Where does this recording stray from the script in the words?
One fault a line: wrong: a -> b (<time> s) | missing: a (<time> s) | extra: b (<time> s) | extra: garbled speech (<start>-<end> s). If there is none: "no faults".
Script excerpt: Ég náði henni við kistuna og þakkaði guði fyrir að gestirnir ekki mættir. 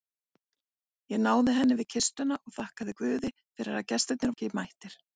no faults